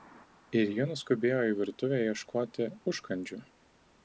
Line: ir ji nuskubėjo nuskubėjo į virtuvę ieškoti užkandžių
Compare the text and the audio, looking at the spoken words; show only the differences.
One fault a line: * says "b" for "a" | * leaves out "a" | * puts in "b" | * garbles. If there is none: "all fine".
* leaves out "nuskubėjo"